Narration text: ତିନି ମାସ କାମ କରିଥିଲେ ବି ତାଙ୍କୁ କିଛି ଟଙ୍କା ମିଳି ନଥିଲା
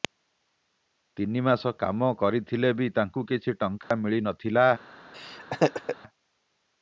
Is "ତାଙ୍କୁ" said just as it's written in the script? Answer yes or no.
yes